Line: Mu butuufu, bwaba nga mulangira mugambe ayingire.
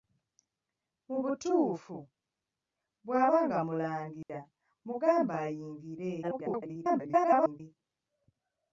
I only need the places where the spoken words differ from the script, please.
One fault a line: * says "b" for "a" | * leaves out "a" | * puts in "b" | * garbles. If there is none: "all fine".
* garbles